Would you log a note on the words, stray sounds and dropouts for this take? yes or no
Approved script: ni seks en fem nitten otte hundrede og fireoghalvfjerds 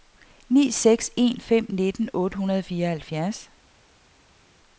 no